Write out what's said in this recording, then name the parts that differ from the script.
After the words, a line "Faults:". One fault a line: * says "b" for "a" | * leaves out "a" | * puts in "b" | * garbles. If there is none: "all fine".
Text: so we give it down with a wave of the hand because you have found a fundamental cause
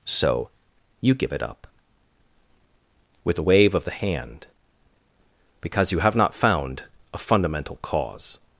so you give it up with a wave of the hand because you have not found a fundamental cause
Faults:
* says "you" for "we"
* says "up" for "down"
* puts in "not"